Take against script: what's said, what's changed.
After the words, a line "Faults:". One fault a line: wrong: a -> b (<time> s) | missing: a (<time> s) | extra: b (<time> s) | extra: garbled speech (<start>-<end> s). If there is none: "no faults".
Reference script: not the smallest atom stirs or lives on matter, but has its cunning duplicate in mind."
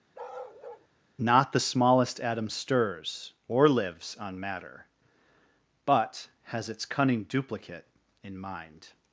not the smallest atom stirs or lives on matter, but has its cunning duplicate in mind."
Faults:
no faults